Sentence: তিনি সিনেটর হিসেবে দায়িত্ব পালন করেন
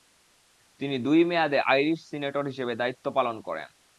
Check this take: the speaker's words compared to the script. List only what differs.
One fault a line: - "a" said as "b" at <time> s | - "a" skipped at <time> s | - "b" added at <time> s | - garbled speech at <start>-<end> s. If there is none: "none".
- "দুই মেয়াদে আইরিশ" added at 1.0 s